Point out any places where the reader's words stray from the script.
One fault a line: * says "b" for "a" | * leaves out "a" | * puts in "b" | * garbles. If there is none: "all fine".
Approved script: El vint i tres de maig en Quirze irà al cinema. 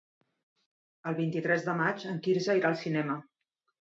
all fine